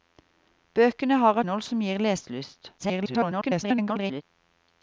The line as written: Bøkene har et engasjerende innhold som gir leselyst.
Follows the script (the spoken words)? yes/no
no